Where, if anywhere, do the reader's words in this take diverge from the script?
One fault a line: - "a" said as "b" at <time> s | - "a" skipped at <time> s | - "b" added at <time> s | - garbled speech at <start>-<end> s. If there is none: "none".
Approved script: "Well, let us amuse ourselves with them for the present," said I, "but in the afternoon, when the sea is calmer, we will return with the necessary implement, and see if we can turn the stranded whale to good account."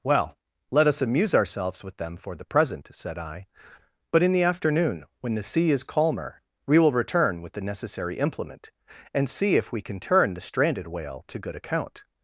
none